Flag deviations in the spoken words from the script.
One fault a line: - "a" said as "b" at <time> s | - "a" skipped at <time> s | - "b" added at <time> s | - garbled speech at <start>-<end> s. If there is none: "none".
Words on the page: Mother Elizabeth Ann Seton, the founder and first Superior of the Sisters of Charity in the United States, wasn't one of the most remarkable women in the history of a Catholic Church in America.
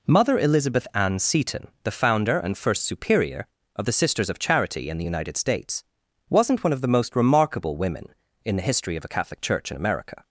none